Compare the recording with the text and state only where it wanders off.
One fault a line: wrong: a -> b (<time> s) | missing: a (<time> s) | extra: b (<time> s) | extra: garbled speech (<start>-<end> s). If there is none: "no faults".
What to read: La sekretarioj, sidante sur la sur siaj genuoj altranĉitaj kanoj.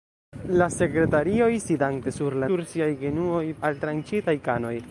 no faults